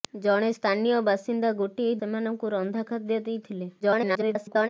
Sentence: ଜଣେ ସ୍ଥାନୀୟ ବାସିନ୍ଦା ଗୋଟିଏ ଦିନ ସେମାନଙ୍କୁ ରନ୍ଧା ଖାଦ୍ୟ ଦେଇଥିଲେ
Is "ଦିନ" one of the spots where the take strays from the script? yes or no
yes